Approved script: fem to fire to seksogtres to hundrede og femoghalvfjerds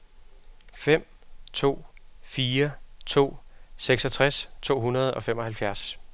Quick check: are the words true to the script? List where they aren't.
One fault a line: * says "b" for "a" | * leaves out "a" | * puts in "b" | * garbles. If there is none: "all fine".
all fine